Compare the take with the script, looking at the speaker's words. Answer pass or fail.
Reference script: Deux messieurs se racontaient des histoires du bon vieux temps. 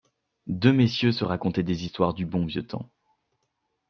pass